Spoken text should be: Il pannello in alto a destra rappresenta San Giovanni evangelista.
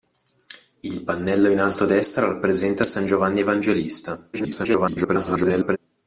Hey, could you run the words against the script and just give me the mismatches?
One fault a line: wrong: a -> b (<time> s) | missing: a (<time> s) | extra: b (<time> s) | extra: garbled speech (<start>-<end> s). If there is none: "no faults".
extra: garbled speech (4.3-5.8 s)